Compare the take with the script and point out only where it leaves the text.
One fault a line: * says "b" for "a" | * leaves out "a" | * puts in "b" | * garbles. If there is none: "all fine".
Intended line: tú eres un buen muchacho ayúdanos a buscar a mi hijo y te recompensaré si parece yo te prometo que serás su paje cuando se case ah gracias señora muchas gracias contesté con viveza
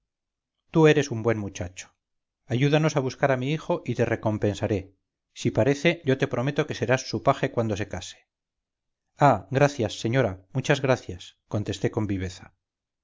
all fine